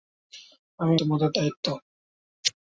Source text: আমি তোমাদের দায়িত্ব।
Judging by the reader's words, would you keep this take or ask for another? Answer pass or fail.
pass